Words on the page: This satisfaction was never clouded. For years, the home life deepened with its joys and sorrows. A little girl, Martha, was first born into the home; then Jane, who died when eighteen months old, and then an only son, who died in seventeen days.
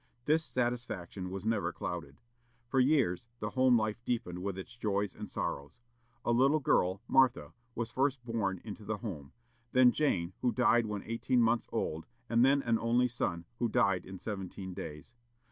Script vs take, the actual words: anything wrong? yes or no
no